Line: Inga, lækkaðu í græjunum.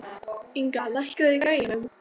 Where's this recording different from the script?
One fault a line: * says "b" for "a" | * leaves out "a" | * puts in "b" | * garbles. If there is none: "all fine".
all fine